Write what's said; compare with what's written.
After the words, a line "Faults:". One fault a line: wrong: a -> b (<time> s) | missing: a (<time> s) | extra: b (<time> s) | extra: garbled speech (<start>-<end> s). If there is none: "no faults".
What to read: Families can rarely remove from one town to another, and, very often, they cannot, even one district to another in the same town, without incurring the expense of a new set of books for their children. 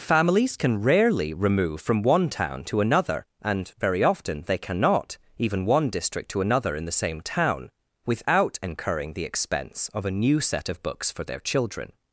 Families can rarely remove from one town to another, and, very often, they cannot, even one district to another in the same town, without incurring the expense of a new set of books for their children.
Faults:
no faults